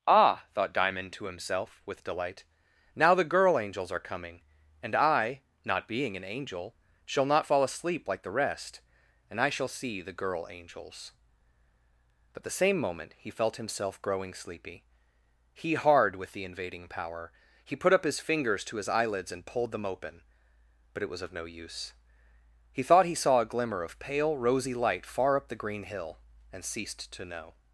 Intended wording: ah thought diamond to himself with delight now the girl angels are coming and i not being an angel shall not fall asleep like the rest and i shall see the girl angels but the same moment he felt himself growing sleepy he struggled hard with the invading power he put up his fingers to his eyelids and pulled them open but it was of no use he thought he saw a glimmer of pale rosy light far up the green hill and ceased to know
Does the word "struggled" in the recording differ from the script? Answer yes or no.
yes